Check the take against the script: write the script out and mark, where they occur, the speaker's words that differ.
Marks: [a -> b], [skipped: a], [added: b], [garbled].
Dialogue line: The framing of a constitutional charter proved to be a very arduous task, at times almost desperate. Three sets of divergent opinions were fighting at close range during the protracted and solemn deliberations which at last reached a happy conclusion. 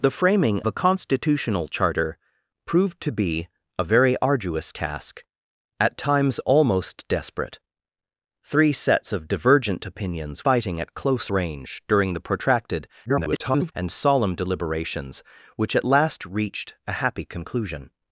The framing [skipped: of] a constitutional charter proved to be a very arduous task, at times almost desperate. Three sets of divergent opinions [skipped: were] fighting at close range during the protracted [garbled] and solemn deliberations which at last reached a happy conclusion.